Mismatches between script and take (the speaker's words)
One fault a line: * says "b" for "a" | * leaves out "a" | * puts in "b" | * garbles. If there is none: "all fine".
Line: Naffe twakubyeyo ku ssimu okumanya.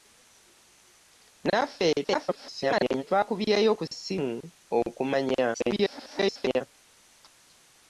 * garbles
* garbles